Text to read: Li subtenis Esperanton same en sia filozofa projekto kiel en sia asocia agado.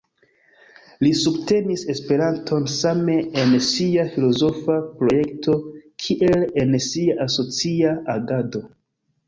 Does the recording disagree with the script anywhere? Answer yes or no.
no